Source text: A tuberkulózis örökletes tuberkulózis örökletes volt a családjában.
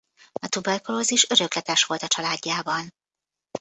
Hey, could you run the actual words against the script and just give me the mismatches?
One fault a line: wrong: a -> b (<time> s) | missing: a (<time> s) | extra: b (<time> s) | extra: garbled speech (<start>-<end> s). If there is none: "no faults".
missing: tuberkulózis örökletes (1.8 s)